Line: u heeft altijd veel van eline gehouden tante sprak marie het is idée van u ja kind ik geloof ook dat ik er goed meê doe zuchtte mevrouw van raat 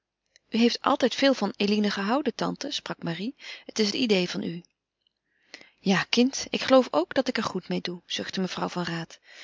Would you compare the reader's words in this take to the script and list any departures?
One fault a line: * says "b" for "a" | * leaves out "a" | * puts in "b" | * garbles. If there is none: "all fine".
all fine